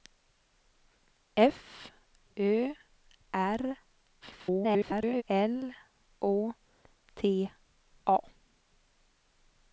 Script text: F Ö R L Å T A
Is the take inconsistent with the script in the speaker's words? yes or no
yes